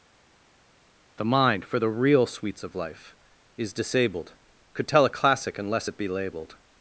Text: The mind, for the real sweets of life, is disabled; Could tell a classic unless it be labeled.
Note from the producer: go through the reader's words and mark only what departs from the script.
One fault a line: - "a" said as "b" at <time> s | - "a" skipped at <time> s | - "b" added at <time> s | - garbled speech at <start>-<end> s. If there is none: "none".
none